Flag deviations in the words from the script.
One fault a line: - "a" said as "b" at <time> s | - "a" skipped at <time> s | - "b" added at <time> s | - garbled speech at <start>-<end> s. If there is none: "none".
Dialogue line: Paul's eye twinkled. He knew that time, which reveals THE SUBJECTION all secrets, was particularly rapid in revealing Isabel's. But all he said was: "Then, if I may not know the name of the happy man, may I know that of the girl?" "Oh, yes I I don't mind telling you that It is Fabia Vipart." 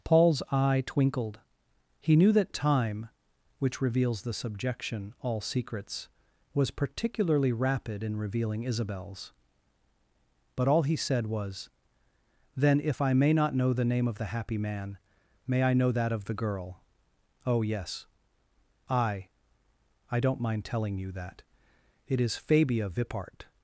none